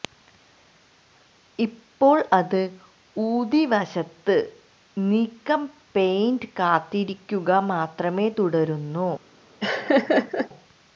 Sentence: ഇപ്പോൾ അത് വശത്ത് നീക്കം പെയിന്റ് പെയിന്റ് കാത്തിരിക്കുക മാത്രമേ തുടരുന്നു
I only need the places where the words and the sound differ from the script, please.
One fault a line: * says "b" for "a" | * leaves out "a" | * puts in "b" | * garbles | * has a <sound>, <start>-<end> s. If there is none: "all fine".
* puts in "ഊതി"
* leaves out "പെയിന്റ്"
* has a laugh, 9.6-10.5 s